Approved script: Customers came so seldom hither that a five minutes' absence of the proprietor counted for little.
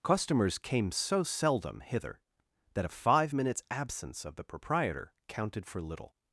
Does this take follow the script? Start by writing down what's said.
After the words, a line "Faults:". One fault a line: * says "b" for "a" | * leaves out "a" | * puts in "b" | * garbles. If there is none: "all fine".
Customers came so seldom hither that a five minutes' absence of the proprietor counted for little.
Faults:
all fine